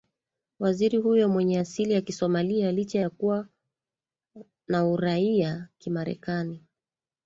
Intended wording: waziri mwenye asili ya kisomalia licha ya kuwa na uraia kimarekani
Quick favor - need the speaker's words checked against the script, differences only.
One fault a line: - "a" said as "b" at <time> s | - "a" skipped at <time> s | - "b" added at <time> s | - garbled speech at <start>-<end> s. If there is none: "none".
- "huyo" added at 1.0 s